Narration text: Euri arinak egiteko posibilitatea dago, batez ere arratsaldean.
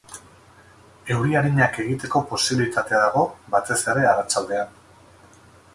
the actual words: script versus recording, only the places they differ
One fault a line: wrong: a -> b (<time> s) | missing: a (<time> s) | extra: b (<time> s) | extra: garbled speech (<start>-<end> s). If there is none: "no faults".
no faults